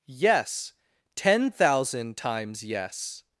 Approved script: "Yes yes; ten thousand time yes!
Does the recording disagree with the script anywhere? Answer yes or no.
yes